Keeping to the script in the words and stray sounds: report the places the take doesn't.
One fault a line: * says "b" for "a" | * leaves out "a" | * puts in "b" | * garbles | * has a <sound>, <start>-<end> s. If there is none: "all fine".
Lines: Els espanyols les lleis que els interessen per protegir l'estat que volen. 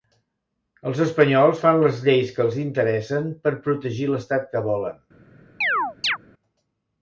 * puts in "fan"
* has a chirp, 5.6-6.2 s